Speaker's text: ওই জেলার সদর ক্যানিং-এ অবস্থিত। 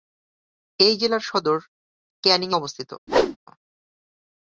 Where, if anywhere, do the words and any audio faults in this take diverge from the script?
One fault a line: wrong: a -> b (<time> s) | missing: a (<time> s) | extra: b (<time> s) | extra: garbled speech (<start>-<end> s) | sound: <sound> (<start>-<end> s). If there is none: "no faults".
wrong: ওই -> এই (0.8 s)
sound: whoosh (3.1-3.4 s)